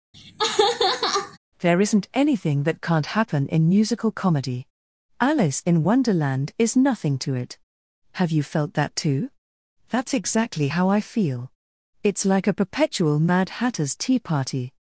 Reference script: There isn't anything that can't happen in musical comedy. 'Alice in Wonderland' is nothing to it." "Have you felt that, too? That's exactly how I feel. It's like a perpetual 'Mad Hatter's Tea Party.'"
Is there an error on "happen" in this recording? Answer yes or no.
no